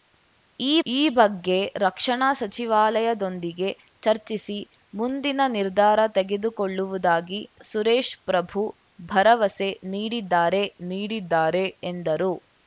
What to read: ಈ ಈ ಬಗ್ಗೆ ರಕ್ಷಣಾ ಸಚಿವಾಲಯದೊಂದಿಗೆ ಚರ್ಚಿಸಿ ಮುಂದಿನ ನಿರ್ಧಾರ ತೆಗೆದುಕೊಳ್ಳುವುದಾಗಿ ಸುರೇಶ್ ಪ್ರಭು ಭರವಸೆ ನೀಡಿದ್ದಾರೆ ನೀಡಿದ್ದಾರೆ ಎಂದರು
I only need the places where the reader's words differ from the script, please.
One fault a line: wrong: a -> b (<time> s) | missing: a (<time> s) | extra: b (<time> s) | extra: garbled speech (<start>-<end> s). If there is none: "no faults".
no faults